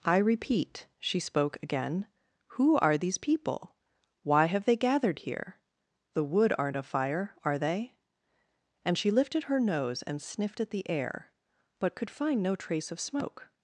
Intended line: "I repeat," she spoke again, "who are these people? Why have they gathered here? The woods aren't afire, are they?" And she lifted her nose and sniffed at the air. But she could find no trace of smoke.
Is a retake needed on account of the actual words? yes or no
yes